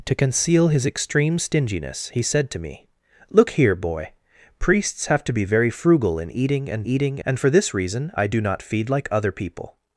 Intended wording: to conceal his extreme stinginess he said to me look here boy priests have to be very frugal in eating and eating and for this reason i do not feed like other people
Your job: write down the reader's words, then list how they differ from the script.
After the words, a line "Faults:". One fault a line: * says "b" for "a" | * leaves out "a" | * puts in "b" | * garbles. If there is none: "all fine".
to conceal his extreme stinginess he said to me look here boy priests have to be very frugal in eating and eating and for this reason i do not feed like other people
Faults:
all fine